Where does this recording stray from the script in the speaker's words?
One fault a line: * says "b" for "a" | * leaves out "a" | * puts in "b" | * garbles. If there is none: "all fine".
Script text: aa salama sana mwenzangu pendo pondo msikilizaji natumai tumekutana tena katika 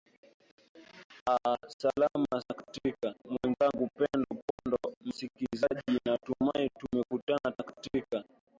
* says "katika" for "sana"
* leaves out "tena"